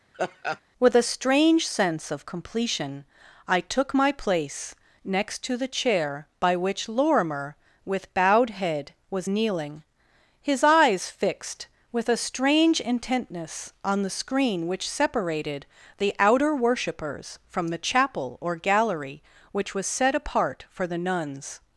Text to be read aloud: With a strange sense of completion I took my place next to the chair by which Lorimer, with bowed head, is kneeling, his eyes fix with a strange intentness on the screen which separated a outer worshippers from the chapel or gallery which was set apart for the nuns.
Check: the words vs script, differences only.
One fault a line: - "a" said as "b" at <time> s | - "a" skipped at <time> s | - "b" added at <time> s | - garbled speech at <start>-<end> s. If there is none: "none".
- "is" said as "was" at 9.1 s
- "fix" said as "fixed" at 11.1 s
- "a" said as "the" at 16.0 s